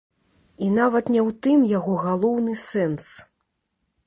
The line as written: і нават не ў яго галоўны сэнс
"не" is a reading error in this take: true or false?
false